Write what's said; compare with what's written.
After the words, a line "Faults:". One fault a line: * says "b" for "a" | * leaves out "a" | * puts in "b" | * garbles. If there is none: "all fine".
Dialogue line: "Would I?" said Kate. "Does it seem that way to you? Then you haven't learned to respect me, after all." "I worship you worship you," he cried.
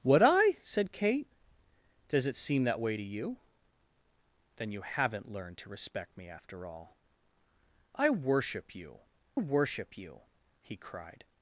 "Would I?" said Kate. "Does it seem that way to you? Then you haven't learned to respect me, after all." "I worship you worship you," he cried.
Faults:
all fine